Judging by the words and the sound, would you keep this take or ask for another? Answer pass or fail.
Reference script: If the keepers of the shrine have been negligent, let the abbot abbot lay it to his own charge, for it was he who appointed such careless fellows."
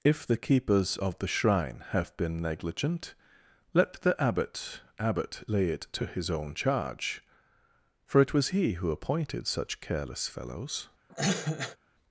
fail